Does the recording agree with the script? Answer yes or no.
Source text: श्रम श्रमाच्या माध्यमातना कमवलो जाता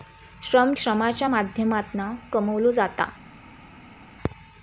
yes